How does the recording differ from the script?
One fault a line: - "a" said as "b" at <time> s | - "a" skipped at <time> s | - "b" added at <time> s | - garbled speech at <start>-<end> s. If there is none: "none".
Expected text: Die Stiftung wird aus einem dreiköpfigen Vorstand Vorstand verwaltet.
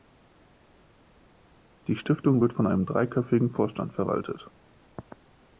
- "aus" said as "von" at 2.5 s
- "Vorstand" skipped at 3.9 s